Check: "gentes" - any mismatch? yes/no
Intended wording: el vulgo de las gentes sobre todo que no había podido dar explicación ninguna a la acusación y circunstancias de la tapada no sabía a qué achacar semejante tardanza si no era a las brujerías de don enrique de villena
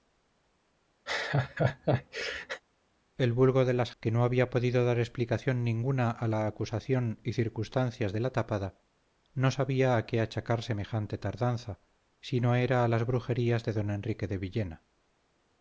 yes